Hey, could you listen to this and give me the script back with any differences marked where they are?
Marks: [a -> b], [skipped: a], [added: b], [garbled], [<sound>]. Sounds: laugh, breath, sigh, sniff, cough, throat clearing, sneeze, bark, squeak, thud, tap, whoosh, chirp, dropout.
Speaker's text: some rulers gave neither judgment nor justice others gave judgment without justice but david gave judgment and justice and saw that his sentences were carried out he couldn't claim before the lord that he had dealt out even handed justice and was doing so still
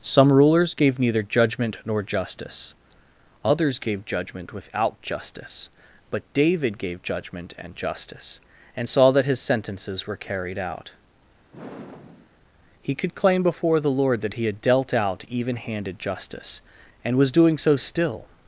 some rulers gave neither judgment nor justice others gave judgment without justice but david gave judgment and justice and saw that his sentences were carried out [sigh] he [couldn't -> could] claim before the lord that he had dealt out even handed justice and was doing so still